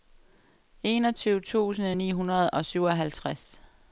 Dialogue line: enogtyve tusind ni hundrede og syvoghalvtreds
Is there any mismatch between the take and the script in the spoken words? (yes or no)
no